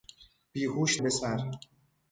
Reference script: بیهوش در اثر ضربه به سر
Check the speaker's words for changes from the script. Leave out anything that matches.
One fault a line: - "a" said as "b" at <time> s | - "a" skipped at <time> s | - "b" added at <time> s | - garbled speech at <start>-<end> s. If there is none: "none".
- "در اثر ضربه" skipped at 1.0 s